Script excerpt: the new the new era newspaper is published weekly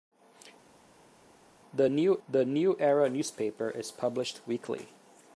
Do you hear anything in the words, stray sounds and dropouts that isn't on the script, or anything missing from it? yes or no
no